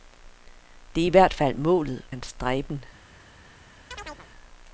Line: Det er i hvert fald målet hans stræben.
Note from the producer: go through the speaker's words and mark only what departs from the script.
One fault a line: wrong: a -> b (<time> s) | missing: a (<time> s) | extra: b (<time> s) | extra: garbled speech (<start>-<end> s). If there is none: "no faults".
no faults